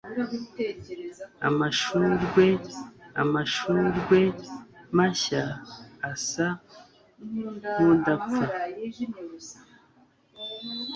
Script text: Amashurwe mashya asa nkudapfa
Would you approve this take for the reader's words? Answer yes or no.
no